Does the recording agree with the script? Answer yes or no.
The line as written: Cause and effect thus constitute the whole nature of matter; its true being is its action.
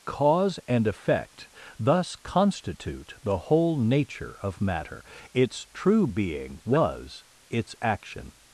no